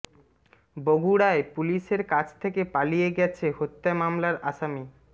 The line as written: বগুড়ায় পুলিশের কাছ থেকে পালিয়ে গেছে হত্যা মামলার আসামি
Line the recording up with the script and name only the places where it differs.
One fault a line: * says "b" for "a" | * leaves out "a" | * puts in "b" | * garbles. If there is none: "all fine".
all fine